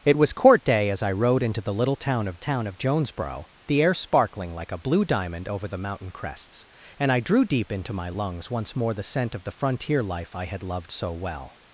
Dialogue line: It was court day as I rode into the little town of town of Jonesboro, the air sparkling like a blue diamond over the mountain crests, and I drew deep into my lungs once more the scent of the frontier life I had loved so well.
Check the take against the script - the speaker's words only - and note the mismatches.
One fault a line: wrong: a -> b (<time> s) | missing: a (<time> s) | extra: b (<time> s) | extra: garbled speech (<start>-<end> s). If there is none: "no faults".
no faults